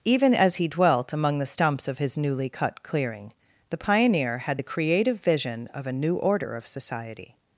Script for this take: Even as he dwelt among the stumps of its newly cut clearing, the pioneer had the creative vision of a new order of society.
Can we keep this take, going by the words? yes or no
no